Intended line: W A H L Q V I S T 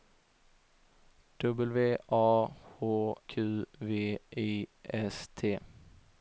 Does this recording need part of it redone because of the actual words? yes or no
yes